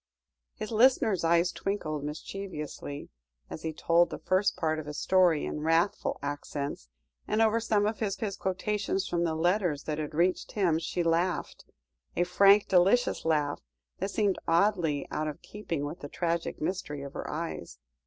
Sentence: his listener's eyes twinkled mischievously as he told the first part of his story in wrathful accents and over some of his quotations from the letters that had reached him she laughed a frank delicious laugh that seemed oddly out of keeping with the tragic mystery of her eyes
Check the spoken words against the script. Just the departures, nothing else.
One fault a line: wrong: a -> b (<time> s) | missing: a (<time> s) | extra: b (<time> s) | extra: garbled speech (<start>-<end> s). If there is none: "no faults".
extra: his (8.2 s)